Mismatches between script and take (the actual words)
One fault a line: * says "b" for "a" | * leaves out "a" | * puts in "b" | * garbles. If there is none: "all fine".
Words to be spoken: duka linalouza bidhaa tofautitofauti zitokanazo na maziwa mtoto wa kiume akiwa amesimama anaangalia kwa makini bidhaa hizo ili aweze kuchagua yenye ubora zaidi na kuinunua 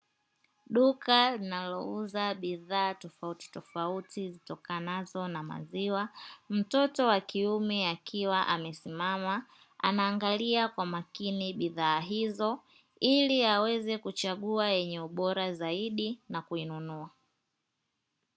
all fine